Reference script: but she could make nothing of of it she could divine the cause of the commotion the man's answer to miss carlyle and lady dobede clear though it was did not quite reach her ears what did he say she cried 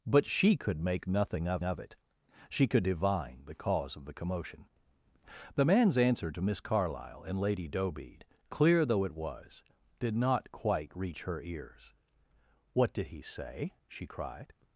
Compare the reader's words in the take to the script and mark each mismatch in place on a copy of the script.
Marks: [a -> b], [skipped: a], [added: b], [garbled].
but she could make nothing of of it she could divine the cause of the commotion the man's answer to miss carlyle and lady dobede clear though it was did not quite reach her ears what did he say she cried